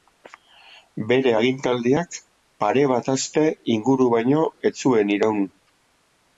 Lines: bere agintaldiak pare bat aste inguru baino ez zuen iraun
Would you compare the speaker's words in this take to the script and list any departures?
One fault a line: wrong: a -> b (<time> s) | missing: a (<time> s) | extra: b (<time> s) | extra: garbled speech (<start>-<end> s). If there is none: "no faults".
no faults